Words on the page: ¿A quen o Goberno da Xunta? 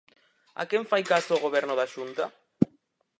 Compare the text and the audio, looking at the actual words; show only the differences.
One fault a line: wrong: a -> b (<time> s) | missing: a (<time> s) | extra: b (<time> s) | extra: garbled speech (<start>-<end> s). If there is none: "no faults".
extra: fai caso (0.9 s)